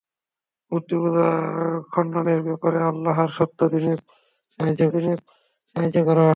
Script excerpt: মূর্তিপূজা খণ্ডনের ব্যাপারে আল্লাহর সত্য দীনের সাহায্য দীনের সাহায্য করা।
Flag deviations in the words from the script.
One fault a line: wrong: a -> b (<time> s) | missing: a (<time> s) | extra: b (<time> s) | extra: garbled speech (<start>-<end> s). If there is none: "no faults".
no faults